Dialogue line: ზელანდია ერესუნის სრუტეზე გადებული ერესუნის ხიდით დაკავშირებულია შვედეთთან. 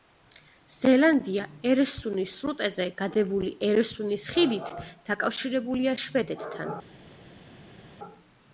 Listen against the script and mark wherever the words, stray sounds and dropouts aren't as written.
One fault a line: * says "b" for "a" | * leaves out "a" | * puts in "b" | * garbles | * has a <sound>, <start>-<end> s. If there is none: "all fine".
all fine